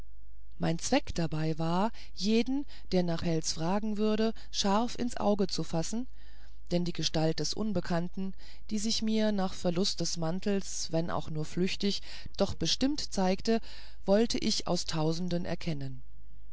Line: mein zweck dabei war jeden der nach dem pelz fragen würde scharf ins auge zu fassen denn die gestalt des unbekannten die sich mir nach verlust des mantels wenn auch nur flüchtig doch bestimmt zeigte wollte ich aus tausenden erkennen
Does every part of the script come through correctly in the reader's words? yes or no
no